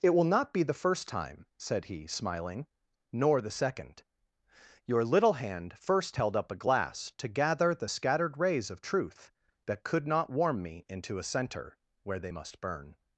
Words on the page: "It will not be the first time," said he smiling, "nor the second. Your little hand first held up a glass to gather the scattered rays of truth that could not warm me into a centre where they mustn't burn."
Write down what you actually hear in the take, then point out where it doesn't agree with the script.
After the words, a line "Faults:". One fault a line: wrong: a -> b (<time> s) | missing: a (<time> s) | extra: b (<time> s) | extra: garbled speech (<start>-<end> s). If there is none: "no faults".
"It will not be the first time," said he smiling, "nor the second. Your little hand first held up a glass to gather the scattered rays of truth that could not warm me into a centre where they must burn."
Faults:
wrong: mustn't -> must (12.3 s)